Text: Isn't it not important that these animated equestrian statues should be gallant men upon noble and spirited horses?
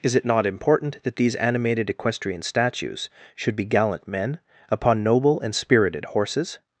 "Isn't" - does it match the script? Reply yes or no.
no